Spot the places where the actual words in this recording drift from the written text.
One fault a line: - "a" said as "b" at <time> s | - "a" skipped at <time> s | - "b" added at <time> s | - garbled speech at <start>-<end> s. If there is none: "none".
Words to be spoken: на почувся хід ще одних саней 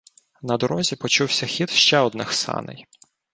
- "дорозі" added at 0.5 s